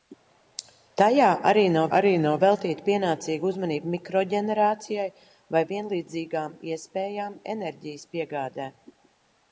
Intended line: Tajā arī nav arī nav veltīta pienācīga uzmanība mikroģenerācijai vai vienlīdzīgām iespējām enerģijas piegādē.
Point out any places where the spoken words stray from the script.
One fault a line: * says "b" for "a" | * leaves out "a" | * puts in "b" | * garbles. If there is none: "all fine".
all fine